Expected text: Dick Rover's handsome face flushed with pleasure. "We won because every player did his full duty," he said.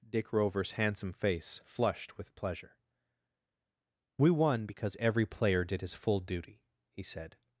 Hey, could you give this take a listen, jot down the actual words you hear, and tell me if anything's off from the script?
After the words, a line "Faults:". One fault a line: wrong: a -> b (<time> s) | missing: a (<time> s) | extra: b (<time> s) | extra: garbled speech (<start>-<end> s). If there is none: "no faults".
Dick Rover's handsome face flushed with pleasure. "We won because every player did his full duty," he said.
Faults:
no faults